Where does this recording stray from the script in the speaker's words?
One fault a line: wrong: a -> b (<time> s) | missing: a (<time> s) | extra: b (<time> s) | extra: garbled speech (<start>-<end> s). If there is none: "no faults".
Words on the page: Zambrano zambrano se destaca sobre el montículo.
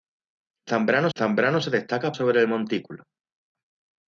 no faults